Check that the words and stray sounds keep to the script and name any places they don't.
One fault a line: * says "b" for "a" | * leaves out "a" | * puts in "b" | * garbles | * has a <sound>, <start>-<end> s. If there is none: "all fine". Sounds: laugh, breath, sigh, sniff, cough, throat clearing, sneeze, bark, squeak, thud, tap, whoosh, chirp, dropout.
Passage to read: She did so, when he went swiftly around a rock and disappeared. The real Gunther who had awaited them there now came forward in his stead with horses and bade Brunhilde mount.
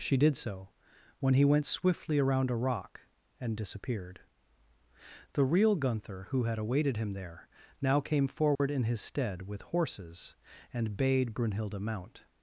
* says "him" for "them"
* has a dropout, 8.5-8.6 s